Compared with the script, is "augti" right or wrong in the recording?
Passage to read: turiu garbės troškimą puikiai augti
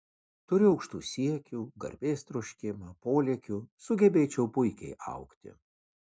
right